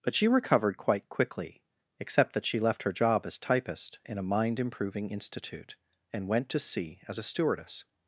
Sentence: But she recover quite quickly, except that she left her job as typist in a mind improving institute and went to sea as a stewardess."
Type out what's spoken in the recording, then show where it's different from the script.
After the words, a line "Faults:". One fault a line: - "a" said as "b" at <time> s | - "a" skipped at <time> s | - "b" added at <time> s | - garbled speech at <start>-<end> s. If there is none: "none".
But she recovered quite quickly, except that she left her job as typist in a mind improving institute and went to sea as a stewardess."
Faults:
- "recover" said as "recovered" at 0.3 s